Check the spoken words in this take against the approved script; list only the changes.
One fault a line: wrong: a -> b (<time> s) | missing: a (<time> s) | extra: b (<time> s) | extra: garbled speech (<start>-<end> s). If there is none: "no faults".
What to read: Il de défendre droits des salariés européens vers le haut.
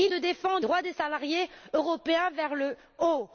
no faults